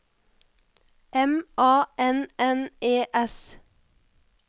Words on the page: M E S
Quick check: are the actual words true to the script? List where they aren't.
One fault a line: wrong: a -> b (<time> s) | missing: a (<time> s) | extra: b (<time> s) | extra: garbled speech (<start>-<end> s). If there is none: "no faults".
extra: A N N (1.6 s)